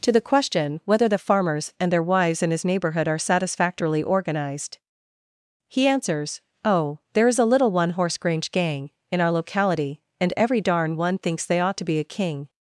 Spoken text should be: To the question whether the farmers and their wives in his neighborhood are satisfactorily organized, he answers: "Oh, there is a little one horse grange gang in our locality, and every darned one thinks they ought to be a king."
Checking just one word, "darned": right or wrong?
wrong